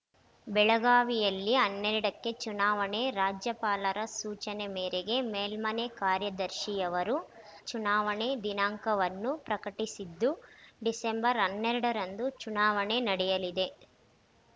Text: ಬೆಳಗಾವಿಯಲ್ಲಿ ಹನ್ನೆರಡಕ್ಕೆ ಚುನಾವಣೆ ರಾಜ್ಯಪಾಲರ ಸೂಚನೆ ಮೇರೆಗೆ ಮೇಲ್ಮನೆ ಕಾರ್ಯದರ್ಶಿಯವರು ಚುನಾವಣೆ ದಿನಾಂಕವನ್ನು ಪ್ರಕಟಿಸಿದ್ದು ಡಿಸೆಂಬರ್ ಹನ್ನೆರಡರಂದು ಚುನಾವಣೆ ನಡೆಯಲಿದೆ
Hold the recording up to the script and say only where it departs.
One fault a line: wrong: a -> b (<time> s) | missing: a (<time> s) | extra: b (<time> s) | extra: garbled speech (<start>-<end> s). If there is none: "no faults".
no faults